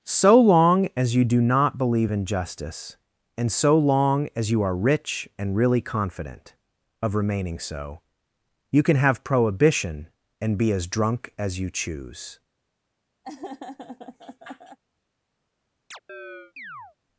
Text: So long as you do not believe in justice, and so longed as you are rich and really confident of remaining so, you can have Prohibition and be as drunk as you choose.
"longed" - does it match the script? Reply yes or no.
no